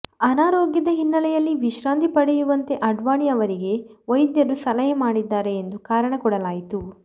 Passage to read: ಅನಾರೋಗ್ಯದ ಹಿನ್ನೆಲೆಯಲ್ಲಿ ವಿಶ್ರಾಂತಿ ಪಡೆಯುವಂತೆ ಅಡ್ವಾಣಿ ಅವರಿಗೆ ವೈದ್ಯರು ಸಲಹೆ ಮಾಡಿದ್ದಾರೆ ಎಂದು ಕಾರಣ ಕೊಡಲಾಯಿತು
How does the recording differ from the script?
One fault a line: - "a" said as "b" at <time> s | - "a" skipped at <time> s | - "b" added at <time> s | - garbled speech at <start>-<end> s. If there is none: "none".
none